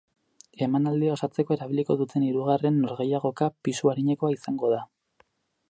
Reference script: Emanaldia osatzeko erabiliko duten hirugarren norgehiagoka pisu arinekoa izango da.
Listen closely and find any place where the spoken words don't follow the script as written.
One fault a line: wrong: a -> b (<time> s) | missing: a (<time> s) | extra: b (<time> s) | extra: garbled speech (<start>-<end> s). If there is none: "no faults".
no faults